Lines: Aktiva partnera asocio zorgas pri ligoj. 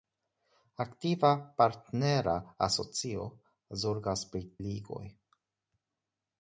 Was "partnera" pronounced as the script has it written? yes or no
yes